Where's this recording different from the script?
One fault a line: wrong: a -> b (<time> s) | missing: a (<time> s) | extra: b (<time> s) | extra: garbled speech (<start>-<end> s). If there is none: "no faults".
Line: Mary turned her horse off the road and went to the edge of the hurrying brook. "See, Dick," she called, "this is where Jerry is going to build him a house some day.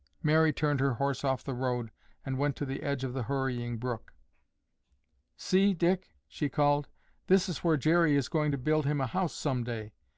no faults